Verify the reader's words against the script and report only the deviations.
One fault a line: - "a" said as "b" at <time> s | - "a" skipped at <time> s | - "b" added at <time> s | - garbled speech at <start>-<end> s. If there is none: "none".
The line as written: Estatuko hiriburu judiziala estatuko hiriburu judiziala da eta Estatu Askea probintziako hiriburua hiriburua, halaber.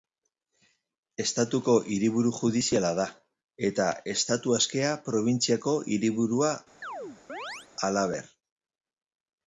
- "estatuko hiriburu judiziala" skipped at 2.9 s
- "hiriburua" skipped at 6.6 s